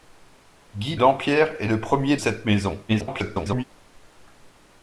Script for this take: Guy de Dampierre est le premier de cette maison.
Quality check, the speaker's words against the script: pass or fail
fail